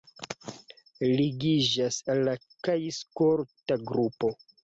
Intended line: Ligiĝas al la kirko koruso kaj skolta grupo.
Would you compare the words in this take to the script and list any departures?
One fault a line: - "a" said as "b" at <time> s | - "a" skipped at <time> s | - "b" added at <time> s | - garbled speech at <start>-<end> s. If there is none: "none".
- "kirko koruso" skipped at 2.3 s